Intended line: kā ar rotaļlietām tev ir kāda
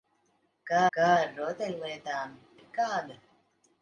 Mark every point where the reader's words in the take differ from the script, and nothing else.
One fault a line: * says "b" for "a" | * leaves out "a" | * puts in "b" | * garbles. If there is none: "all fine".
* puts in "kā"
* leaves out "tev"